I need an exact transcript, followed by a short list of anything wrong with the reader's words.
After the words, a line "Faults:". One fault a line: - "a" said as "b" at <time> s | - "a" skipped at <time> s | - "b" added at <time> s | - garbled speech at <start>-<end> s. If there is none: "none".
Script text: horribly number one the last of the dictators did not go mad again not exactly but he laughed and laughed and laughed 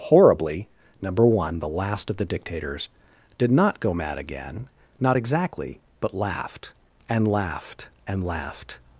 horribly number one the last of the dictators did not go mad again not exactly but laughed and laughed and laughed
Faults:
- "he" skipped at 6.1 s